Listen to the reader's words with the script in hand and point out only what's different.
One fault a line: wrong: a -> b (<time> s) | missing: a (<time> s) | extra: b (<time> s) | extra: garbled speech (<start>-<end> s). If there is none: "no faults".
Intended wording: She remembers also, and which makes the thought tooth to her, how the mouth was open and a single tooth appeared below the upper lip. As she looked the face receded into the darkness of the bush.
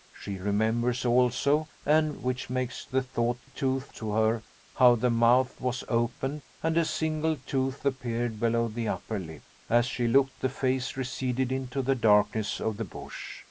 no faults